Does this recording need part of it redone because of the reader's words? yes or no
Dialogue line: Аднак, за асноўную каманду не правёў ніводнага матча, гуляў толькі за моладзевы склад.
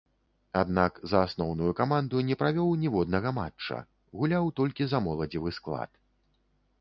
no